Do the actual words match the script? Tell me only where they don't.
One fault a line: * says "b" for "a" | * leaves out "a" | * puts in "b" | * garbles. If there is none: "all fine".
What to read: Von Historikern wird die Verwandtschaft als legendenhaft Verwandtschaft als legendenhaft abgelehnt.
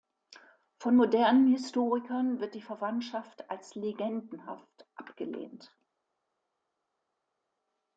* puts in "modernen"
* leaves out "Verwandtschaft als legendenhaft"